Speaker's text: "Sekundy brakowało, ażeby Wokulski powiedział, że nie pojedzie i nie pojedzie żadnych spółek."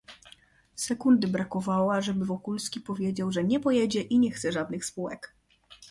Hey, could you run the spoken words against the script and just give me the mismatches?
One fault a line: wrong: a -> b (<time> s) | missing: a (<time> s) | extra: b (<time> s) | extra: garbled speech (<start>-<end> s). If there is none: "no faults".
wrong: pojedzie -> chce (4.3 s)